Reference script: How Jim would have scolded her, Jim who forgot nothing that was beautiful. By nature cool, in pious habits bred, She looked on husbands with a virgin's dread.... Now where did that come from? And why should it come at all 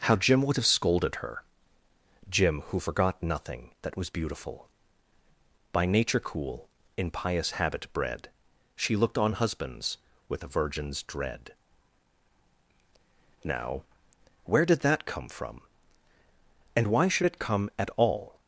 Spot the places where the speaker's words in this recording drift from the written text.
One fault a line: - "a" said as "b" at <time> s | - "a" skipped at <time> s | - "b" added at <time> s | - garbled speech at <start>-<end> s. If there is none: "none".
- "habits" said as "habit" at 7.5 s